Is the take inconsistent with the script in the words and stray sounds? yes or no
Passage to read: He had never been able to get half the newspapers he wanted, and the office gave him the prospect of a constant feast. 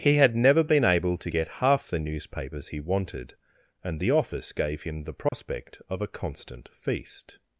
yes